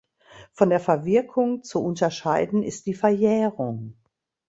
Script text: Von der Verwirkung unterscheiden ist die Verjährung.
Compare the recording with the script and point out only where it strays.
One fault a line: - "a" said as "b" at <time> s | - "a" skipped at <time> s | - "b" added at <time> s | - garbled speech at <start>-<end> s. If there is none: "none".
- "zu" added at 1.6 s